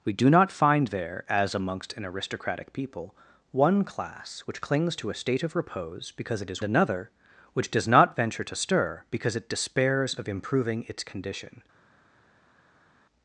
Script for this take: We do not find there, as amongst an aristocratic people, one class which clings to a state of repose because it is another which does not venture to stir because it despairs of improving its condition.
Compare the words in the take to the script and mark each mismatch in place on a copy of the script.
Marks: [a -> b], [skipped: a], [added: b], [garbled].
We do not find there, as amongst an aristocratic people, one class which clings to a state of repose because it is another which does not venture to stir because it despairs of improving its condition.